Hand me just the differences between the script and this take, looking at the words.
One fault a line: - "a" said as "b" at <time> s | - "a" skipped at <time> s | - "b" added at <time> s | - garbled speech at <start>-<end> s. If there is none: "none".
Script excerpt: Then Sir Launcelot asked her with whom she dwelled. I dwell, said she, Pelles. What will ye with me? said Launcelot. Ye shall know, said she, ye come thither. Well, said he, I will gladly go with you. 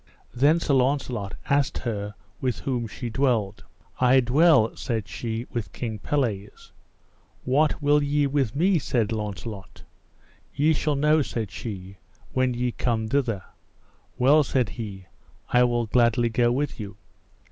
- "with King" added at 5.5 s
- "when" added at 12.3 s